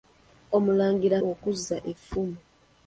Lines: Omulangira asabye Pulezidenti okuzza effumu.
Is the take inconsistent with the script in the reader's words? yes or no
yes